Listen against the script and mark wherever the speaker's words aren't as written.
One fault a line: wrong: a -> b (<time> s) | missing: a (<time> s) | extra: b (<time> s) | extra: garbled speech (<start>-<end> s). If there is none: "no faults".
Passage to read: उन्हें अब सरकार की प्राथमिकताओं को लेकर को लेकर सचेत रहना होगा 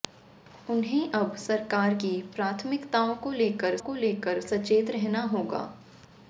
no faults